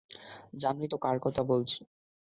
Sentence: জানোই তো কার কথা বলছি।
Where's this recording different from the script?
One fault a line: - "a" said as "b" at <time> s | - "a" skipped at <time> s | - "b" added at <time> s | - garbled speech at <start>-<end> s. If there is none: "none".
none